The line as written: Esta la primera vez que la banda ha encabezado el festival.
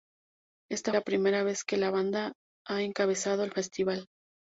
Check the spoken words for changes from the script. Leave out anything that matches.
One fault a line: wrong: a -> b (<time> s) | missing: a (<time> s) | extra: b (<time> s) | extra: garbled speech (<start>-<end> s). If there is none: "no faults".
no faults